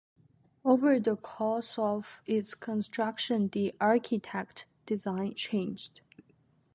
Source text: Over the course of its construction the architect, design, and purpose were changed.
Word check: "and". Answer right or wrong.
wrong